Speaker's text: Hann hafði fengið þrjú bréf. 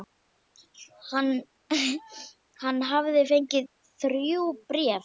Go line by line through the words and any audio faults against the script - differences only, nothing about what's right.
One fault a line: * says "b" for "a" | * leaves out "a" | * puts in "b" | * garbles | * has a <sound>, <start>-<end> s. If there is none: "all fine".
all fine